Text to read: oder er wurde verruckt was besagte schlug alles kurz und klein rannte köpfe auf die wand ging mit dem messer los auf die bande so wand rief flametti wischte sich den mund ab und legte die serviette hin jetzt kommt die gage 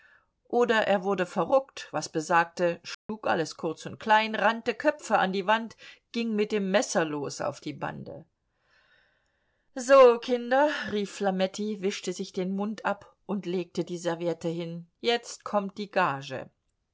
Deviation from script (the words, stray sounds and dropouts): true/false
true